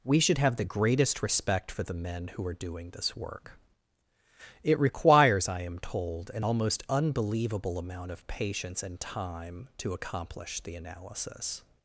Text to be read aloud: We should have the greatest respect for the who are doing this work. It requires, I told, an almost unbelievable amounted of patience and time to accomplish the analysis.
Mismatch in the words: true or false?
true